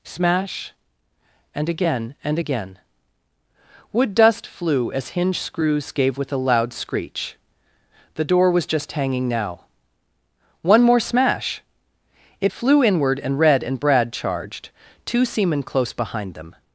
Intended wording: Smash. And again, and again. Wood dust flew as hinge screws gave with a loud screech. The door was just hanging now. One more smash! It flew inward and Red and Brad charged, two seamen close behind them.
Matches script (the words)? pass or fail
pass